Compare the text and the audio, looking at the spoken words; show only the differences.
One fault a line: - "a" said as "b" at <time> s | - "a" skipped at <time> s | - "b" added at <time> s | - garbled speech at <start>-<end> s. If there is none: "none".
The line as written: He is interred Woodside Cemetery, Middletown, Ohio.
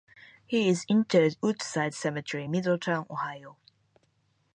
none